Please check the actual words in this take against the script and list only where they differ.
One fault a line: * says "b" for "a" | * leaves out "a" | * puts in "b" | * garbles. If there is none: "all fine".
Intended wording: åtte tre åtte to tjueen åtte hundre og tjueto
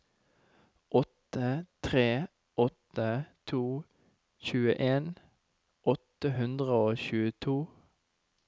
all fine